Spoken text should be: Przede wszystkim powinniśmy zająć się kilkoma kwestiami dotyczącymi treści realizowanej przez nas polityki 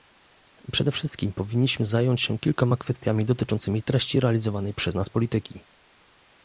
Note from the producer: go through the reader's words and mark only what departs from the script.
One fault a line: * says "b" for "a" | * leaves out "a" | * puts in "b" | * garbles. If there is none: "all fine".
all fine